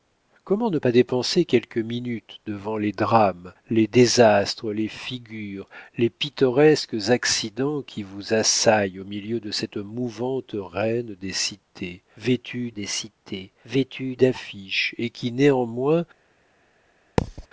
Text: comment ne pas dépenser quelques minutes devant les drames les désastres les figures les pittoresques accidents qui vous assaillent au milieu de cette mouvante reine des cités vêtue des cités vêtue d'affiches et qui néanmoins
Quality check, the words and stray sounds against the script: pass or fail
fail